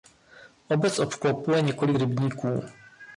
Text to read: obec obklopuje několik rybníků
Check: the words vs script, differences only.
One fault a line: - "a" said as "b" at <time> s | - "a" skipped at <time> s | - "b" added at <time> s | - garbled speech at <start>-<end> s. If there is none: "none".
none